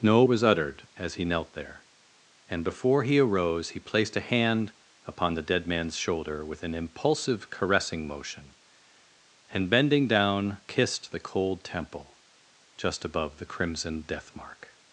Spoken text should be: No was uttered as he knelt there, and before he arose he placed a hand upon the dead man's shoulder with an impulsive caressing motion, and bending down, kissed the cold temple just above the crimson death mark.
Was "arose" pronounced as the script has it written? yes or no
yes